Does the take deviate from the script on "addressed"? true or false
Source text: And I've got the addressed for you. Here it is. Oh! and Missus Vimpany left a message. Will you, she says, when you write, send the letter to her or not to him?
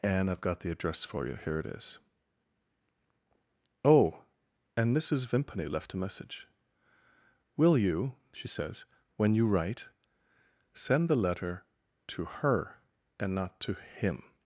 true